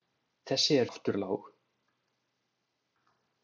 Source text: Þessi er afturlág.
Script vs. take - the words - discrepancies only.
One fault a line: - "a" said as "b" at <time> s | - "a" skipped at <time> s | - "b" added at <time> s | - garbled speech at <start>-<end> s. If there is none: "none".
none